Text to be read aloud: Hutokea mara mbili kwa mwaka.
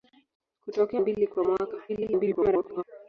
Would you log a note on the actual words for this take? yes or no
yes